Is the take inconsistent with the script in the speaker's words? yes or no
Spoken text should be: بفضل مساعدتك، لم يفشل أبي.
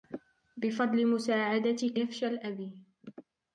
yes